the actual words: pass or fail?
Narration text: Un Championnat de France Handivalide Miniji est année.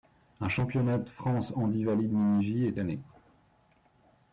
pass